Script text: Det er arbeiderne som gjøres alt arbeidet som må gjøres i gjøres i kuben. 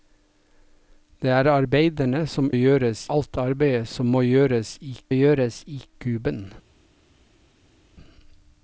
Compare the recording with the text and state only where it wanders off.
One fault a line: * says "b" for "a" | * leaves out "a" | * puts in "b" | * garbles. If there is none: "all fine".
all fine